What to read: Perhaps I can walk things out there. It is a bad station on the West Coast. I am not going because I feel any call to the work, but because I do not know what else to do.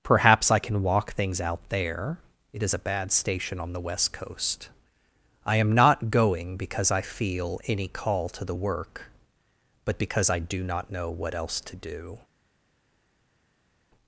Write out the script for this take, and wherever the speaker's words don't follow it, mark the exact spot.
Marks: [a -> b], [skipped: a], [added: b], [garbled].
Perhaps I can walk things out there. It is a bad station on the West Coast. I am not going because I feel any call to the work, but because I do not know what else to do.